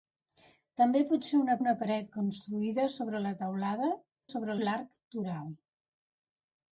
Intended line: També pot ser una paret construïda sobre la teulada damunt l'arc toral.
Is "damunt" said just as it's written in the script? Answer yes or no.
no